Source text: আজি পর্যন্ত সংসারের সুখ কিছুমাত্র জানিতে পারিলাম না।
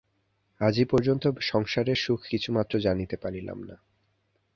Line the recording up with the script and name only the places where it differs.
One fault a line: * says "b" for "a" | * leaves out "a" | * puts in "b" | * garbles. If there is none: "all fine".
all fine